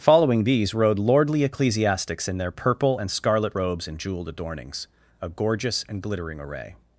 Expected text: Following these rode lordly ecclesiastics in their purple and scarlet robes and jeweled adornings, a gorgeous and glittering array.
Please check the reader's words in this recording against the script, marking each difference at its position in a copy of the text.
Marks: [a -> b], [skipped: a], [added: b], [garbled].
Following these rode lordly ecclesiastics in their purple and scarlet robes and jeweled adornings, a gorgeous and glittering array.